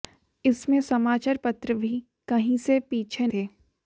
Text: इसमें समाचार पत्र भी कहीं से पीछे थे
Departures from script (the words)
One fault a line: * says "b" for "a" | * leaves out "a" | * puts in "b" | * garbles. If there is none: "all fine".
all fine